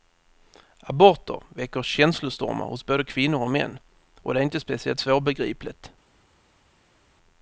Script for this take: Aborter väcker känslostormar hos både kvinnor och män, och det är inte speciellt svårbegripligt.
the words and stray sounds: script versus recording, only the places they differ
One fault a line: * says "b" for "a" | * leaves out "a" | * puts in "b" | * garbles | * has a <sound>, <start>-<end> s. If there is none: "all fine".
all fine